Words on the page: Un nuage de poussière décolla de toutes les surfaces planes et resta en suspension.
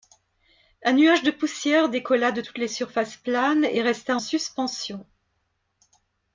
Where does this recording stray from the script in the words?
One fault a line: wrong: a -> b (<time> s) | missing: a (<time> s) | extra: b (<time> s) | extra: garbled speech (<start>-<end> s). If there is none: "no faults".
missing: en (4.2 s)